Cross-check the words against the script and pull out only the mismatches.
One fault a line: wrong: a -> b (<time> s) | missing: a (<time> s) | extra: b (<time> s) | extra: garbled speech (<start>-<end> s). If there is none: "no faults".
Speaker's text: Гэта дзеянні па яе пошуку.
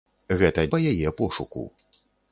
missing: дзеянні (0.6 s)